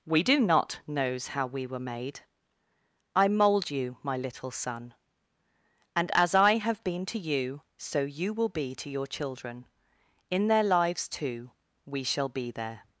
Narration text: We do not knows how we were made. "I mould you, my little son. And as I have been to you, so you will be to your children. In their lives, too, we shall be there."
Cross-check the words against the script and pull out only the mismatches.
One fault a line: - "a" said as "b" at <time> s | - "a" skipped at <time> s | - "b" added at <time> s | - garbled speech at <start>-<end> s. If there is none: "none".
none